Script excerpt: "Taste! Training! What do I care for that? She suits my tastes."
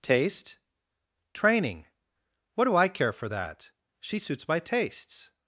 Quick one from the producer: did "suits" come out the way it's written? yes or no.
yes